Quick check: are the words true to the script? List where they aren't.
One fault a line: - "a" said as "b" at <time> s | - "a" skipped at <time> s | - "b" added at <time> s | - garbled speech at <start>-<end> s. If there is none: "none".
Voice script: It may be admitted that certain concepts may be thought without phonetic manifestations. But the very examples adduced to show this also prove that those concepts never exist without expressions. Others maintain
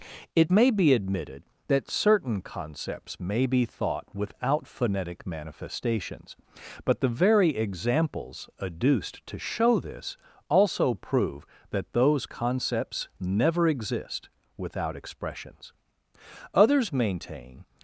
none